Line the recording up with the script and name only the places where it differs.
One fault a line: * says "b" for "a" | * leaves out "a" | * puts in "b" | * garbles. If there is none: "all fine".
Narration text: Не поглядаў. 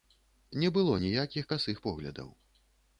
* puts in "было ніякіх касых"